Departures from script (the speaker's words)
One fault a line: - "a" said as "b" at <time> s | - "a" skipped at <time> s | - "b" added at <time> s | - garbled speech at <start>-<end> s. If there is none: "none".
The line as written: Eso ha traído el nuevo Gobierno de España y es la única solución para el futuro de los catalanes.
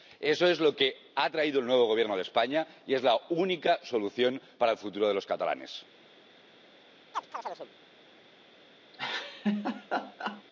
- "es lo que" added at 0.5 s